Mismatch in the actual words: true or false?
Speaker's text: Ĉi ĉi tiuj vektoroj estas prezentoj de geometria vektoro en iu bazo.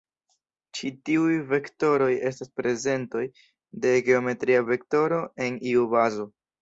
true